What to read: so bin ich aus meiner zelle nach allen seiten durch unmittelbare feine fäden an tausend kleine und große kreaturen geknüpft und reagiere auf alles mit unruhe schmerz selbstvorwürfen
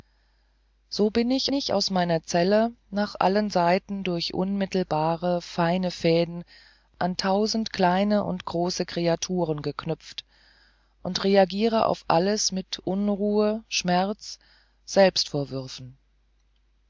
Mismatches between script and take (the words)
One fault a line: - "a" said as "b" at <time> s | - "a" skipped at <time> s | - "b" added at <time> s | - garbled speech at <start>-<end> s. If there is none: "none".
- "ich" added at 1.5 s